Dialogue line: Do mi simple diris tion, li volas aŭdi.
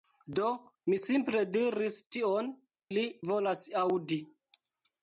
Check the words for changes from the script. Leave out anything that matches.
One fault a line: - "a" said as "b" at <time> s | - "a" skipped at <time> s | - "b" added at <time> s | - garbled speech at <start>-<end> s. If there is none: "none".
none